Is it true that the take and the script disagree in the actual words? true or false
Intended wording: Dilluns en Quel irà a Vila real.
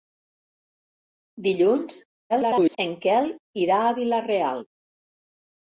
true